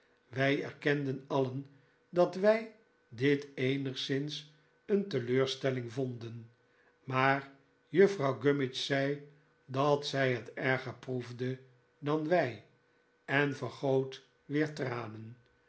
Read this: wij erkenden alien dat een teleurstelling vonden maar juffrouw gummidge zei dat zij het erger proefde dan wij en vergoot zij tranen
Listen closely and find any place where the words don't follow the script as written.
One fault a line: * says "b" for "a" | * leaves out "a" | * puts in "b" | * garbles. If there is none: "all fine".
* puts in "wij dit eenigszins"
* says "weer" for "zij"